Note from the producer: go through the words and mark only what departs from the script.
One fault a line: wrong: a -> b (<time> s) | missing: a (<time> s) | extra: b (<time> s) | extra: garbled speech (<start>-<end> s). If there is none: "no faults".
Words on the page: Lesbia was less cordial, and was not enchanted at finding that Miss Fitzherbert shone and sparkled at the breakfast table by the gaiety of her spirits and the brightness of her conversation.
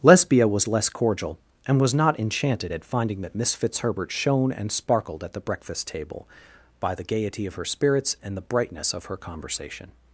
no faults